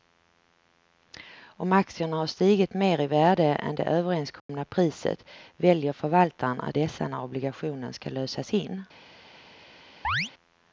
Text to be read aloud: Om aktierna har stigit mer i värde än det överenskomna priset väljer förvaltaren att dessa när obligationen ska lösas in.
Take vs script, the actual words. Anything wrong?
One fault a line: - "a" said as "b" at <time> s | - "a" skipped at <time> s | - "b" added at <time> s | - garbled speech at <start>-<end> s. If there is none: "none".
none